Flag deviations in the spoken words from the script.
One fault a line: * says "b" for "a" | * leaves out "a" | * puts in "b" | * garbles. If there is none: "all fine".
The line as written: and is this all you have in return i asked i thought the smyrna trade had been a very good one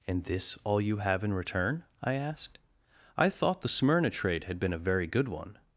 * leaves out "is"